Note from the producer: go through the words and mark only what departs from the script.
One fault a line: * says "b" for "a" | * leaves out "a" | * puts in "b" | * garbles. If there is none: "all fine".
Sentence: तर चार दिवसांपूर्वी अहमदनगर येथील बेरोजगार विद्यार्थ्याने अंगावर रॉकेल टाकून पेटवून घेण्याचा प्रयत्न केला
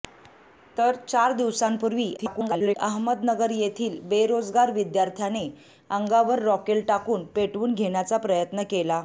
* garbles